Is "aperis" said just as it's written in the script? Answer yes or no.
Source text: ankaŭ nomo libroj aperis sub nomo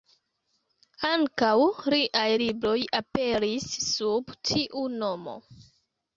yes